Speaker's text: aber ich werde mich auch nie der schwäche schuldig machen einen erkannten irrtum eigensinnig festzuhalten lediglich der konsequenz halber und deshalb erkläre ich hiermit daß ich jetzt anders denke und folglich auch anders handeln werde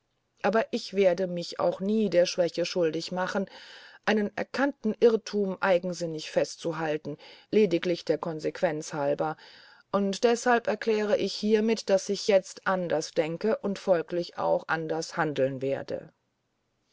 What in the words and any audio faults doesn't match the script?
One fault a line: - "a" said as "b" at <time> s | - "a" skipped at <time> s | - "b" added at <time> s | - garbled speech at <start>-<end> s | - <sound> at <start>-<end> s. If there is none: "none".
none